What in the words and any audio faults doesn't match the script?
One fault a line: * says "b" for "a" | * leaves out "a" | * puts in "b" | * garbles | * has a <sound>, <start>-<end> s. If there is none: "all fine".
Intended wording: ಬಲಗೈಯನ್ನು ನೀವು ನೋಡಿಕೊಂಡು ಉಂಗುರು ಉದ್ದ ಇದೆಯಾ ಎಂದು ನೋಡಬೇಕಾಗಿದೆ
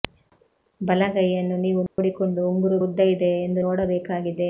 * has a dropout, 1.9-2.0 s